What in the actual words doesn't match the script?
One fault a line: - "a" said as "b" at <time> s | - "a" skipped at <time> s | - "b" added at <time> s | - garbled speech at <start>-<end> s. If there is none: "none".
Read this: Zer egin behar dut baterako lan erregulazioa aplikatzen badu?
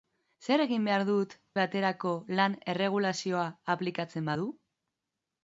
none